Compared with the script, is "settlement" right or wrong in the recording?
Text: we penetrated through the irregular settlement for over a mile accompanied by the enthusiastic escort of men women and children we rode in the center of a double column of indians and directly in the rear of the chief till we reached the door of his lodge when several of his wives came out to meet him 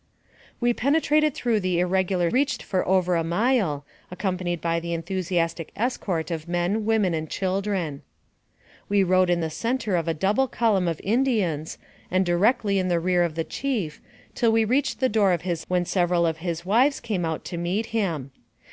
wrong